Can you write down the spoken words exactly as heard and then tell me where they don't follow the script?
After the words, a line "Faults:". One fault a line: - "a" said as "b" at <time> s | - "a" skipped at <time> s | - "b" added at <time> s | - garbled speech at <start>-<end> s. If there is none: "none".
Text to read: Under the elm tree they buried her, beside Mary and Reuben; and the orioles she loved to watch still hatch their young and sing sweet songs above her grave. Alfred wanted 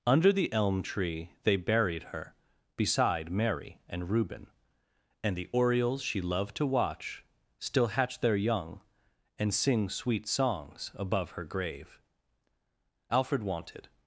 Under the elm tree they buried her, beside Mary and Reuben; and the orioles she loved to watch still hatch their young and sing sweet songs above her grave. Alfred wanted
Faults:
none